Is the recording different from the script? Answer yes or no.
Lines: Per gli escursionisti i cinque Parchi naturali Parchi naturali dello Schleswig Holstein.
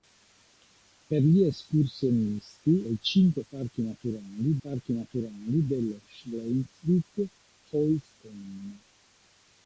no